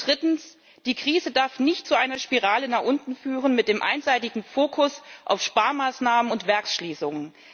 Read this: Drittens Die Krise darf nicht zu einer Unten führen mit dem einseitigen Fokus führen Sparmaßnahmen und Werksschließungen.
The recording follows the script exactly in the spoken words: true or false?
false